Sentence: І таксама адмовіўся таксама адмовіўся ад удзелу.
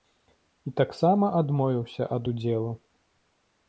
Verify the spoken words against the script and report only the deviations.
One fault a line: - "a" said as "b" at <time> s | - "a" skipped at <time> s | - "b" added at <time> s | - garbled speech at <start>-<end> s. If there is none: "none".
- "таксама адмовіўся" skipped at 2.0 s